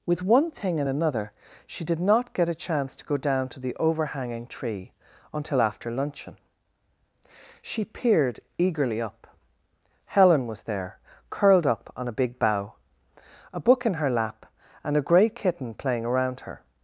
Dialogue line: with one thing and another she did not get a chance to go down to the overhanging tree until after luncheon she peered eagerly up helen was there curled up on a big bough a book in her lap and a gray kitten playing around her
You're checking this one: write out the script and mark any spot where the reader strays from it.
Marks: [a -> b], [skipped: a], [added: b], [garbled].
with one thing and another she did not get a chance to go down to the overhanging tree until after luncheon she peered eagerly up helen was there curled up on a big bough a book in her lap and a gray kitten playing around her